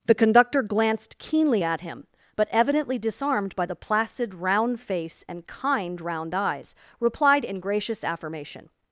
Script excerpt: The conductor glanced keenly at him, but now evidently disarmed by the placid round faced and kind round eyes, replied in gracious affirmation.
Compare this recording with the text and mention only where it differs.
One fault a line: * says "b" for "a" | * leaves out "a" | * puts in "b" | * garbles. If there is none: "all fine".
* leaves out "now"
* says "face" for "faced"